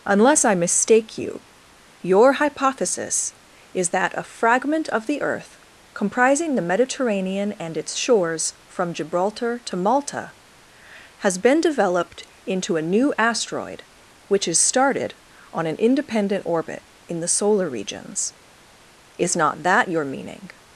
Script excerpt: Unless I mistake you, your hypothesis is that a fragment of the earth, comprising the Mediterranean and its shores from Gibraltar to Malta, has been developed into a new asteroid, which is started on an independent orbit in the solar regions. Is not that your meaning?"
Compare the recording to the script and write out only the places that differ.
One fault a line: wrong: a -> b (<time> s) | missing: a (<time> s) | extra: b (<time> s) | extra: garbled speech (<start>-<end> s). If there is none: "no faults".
no faults